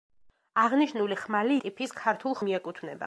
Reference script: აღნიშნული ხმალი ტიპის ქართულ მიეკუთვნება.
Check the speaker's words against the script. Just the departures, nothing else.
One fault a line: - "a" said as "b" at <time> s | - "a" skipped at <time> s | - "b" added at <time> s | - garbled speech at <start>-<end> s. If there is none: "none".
none